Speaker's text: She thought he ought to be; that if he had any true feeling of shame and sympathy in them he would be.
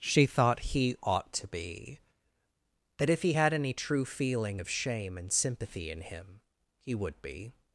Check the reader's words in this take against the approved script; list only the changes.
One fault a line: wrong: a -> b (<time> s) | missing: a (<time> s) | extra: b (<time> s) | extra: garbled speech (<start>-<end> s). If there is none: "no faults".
wrong: them -> him (6.0 s)